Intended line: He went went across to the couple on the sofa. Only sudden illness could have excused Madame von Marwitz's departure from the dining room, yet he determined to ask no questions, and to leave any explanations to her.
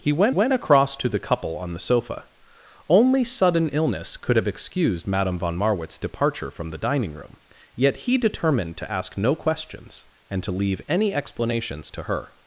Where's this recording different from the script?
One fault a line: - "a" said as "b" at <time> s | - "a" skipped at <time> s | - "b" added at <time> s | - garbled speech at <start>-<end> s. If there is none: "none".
none